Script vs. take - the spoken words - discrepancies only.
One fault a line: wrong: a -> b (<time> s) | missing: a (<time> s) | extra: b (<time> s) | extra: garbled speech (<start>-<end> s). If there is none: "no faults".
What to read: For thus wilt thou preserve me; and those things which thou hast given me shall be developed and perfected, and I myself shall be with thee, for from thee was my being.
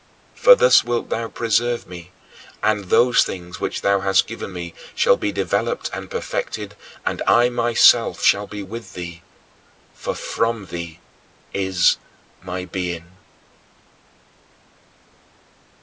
wrong: was -> is (11.5 s)